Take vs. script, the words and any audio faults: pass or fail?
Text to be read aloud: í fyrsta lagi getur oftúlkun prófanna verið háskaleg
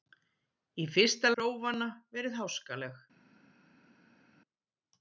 fail